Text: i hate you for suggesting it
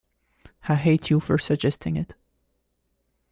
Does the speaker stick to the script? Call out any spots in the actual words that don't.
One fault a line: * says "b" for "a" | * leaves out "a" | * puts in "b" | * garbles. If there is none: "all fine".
all fine